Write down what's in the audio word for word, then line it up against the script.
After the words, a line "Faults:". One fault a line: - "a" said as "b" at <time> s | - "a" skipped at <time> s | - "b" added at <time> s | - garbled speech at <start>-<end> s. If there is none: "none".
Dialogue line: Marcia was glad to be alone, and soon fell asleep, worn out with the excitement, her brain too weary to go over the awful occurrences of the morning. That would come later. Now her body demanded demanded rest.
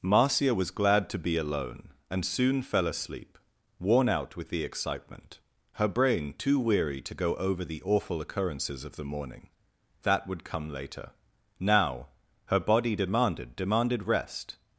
Marcia was glad to be alone, and soon fell asleep, worn out with the excitement, her brain too weary to go over the awful occurrences of the morning. That would come later. Now her body demanded demanded rest.
Faults:
none